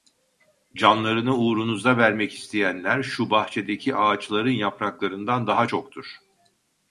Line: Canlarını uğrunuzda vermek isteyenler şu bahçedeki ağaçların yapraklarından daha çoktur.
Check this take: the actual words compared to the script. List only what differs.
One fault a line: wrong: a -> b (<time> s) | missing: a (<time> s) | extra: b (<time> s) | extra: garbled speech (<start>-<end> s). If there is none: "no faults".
no faults